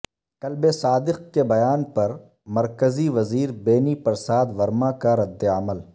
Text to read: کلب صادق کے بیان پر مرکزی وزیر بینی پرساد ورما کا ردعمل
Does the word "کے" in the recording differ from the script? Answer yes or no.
no